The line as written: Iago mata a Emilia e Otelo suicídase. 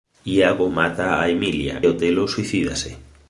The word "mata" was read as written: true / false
true